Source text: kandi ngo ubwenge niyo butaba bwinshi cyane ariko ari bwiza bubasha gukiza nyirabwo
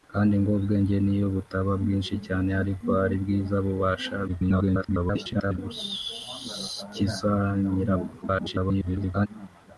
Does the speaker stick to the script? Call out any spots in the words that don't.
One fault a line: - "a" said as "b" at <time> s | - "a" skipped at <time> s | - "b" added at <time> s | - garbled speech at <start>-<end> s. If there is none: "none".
- garbled speech at 4.3-5.6 s
- garbled speech at 8.2-9.3 s